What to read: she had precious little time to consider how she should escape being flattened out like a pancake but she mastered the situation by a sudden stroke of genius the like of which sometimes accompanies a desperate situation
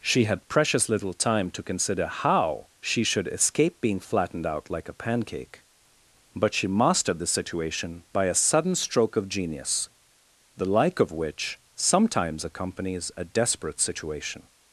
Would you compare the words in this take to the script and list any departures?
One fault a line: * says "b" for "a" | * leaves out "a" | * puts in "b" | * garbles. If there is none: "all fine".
all fine